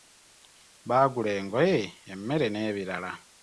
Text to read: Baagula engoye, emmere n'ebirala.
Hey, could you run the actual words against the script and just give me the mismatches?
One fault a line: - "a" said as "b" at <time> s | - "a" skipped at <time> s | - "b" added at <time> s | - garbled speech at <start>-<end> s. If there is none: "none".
none